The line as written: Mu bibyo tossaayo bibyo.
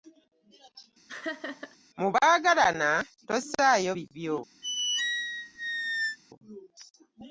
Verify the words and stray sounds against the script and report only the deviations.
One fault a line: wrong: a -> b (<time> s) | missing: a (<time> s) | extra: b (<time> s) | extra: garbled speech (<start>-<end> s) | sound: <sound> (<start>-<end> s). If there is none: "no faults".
sound: laugh (1.1-1.8 s)
wrong: bibyo -> baagalana (2.1 s)
sound: squeak (4.6-6.2 s)